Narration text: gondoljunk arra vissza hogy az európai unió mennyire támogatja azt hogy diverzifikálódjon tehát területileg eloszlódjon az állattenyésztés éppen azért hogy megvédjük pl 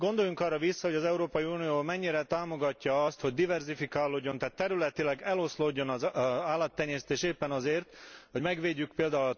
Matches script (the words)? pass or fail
pass